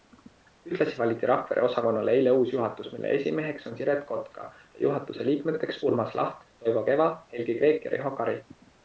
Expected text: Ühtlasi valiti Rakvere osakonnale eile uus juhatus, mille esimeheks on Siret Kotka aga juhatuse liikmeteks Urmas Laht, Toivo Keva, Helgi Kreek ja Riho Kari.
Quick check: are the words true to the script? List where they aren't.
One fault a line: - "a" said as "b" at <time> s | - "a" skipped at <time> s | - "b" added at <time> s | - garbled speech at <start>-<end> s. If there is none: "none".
- "aga" said as "ja" at 4.5 s